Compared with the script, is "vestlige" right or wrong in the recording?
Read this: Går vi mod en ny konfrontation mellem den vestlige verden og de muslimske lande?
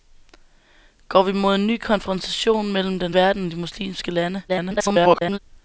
wrong